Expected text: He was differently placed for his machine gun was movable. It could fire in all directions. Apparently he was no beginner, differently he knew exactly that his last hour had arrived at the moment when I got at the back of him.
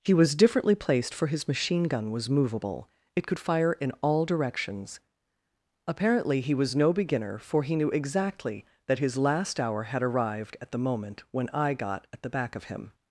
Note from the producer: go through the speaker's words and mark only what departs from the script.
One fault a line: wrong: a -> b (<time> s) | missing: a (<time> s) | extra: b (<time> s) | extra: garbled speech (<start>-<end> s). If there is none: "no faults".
wrong: differently -> for (7.4 s)